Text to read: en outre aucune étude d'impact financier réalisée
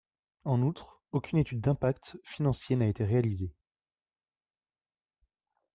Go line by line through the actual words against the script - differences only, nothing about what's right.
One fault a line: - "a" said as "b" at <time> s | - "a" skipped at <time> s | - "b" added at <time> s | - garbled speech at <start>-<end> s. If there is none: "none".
- "n'a été" added at 2.8 s